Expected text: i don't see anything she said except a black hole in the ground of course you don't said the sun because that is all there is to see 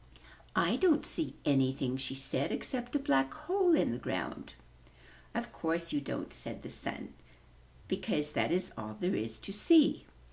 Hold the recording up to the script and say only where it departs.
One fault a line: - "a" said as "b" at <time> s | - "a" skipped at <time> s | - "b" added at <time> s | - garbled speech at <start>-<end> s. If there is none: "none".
none